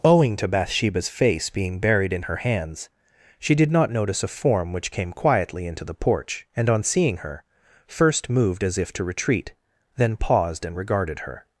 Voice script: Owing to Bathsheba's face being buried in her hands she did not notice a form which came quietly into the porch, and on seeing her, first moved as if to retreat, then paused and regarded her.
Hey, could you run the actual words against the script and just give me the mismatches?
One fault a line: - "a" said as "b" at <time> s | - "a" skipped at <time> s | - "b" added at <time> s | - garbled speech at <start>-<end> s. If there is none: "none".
none